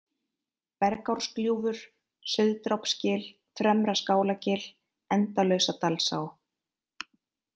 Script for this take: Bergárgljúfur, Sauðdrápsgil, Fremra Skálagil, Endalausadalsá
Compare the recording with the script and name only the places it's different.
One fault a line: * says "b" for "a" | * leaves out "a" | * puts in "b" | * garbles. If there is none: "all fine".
all fine